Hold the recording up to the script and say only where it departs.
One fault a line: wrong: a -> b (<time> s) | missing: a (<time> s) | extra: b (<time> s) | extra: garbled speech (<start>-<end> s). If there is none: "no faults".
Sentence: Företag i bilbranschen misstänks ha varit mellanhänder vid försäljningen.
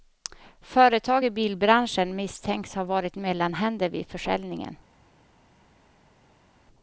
no faults